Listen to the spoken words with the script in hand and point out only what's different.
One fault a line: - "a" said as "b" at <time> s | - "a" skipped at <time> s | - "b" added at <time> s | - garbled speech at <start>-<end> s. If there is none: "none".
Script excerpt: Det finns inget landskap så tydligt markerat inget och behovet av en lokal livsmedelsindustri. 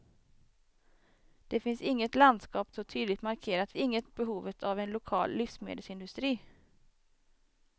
none